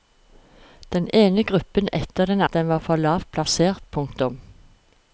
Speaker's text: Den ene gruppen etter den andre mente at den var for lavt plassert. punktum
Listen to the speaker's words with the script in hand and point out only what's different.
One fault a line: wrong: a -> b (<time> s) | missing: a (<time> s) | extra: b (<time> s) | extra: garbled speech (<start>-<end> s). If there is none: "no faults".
missing: andre mente (2.4 s)